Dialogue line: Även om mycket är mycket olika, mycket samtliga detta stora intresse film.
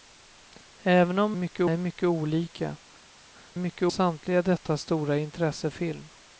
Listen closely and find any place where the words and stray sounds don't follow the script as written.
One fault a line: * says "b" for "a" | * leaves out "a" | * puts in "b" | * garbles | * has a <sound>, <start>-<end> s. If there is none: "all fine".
all fine